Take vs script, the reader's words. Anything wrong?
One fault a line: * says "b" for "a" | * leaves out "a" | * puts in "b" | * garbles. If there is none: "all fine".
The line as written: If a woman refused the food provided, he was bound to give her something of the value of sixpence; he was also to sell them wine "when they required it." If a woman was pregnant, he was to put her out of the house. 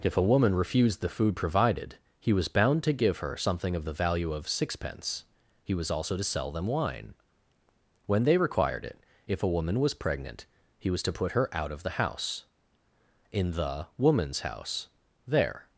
* puts in "In the woman's house there"